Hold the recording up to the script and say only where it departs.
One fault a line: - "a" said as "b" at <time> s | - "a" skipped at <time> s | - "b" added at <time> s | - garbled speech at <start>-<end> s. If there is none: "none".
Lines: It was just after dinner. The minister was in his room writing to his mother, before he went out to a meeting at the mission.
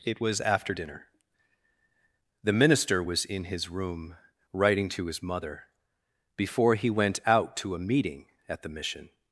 - "just" skipped at 0.4 s